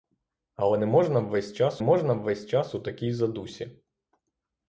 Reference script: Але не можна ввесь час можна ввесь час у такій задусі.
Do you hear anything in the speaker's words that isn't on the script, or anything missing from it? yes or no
no